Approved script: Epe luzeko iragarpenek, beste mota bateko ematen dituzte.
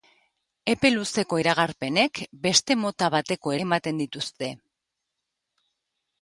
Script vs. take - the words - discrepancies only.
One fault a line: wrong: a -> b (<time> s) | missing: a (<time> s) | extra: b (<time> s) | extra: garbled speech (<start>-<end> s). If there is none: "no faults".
no faults